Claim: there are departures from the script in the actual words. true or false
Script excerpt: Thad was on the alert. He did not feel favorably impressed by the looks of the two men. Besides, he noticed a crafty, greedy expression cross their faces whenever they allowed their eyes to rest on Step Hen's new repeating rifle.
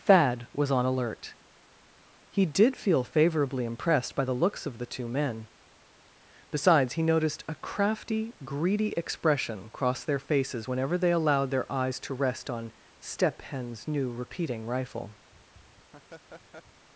true